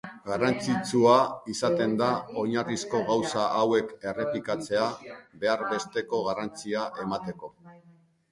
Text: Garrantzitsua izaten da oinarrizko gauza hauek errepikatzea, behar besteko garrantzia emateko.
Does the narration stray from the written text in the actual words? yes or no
no